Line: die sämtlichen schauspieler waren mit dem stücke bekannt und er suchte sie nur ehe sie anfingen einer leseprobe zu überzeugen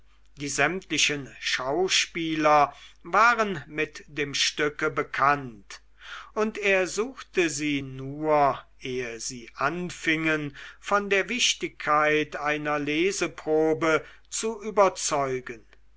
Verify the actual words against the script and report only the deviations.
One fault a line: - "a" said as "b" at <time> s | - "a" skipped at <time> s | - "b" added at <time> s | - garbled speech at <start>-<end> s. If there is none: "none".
- "von der wichtigkeit" added at 10.8 s